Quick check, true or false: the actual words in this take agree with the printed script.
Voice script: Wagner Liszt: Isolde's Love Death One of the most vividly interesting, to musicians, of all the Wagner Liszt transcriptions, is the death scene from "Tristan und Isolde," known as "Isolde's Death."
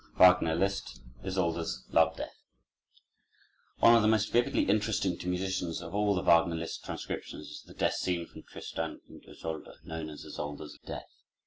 true